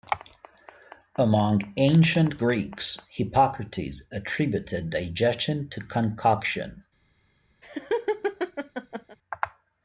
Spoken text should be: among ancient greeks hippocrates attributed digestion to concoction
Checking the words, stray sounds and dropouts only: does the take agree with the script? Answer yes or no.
no